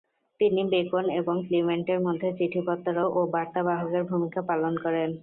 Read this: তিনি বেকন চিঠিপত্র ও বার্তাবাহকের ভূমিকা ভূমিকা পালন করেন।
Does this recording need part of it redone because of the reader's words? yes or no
yes